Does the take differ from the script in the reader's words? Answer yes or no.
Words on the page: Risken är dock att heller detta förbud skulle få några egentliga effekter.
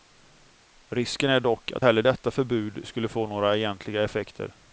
no